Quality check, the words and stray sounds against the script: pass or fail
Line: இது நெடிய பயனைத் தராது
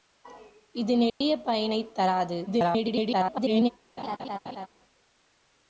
fail